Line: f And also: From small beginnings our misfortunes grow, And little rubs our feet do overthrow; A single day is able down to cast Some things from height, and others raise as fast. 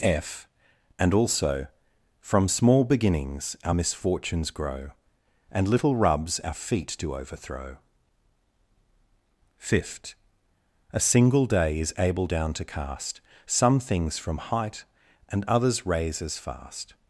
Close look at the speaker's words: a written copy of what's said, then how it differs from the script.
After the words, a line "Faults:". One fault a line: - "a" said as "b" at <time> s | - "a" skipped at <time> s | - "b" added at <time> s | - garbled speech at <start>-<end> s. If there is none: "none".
f And also: From small beginnings our misfortunes grow, And little rubs our feet do overthrow; fifth A single day is able down to cast Some things from height, and others raise as fast.
Faults:
- "fifth" added at 9.6 s